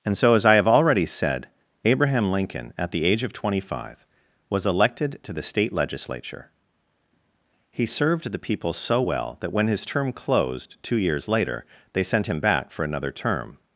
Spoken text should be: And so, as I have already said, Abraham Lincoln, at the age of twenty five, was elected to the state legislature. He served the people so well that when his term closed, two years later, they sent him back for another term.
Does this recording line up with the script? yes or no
yes